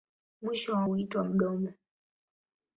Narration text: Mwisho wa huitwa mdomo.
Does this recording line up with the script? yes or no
yes